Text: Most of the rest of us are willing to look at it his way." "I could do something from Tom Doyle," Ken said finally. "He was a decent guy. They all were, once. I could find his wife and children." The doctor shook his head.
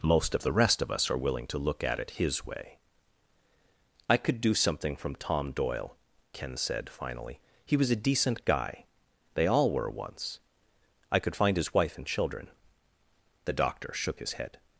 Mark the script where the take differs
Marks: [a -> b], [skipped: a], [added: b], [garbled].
Most of the rest of us are willing to look at it his way." "I could do something from Tom Doyle," Ken said finally. "He was a decent guy. They all were, once. I could find his wife and children." The doctor shook his head.